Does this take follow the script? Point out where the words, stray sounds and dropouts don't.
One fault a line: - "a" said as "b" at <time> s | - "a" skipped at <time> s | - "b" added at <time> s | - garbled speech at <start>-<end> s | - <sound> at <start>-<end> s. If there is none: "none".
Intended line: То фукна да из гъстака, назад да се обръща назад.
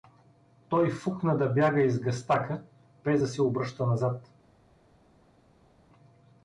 - "То" said as "Той" at 0.7 s
- "бяга" added at 1.5 s
- "назад" said as "без" at 3.0 s